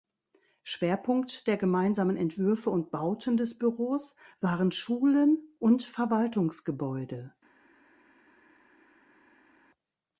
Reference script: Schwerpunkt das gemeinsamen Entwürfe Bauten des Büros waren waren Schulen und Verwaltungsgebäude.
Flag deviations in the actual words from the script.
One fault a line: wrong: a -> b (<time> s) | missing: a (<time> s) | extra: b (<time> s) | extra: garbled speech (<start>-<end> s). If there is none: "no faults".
wrong: das -> der (1.4 s)
extra: und (2.7 s)
missing: waren (4.7 s)